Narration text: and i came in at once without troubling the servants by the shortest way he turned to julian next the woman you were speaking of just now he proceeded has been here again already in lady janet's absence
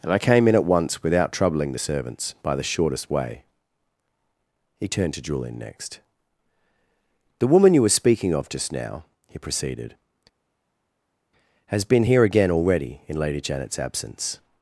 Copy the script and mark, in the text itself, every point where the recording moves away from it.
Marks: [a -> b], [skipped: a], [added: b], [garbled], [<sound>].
and i came in at once without troubling the servants by the shortest way he turned to julian next the woman you were speaking of just now he proceeded has been here again already in lady janet's absence